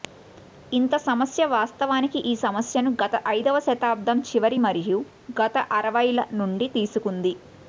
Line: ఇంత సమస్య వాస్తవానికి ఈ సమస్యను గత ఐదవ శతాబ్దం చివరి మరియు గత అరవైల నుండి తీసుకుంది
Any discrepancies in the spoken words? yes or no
no